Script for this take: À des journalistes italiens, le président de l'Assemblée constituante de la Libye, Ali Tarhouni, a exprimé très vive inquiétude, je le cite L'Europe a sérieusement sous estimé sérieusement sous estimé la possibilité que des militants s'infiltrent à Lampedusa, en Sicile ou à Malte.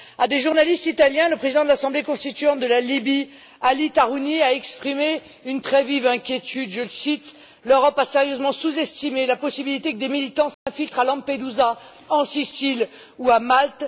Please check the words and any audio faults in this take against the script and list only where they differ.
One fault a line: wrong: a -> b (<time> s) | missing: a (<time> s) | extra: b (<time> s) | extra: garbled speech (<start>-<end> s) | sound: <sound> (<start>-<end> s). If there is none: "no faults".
extra: une (5.5 s)
missing: sérieusement sous estimé (9.3 s)
sound: dropout (10.5-10.7 s)